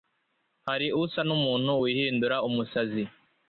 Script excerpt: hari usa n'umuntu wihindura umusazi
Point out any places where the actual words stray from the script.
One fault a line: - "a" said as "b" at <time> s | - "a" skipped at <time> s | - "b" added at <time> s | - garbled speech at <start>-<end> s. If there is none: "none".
none